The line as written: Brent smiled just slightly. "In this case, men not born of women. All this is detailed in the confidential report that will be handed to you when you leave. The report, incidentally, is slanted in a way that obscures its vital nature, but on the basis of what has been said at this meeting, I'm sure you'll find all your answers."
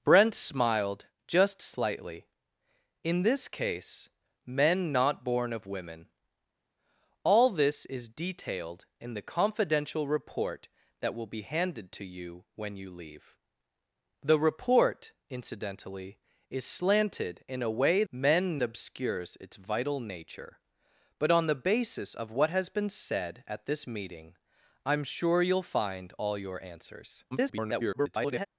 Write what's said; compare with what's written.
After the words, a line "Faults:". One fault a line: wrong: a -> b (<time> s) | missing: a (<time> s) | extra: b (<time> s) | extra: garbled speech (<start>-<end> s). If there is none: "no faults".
Brent smiled just slightly. "In this case, men not born of women. All this is detailed in the confidential report that will be handed to you when you leave. The report, incidentally, is slanted in a way men obscures its vital nature, but on the basis of what has been said at this meeting, I'm sure you'll find all your answers." [garbled]
Faults:
wrong: that -> men (18.1 s)
extra: garbled speech (27.3-28.5 s)